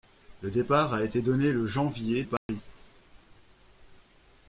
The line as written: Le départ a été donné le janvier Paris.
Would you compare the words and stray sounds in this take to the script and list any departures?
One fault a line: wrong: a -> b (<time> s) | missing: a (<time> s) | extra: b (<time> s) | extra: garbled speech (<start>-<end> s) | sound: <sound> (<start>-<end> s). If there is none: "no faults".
sound: dropout (2.4-2.5 s)